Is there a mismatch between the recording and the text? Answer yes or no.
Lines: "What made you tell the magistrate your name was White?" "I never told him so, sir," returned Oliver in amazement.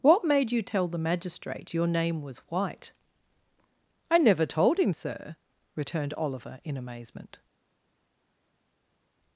yes